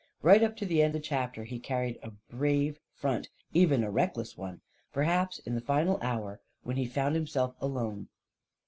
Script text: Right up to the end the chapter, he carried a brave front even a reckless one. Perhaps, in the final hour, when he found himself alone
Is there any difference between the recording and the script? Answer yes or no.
no